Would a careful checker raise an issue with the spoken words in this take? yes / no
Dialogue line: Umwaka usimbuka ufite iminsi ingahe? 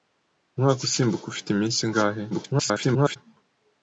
yes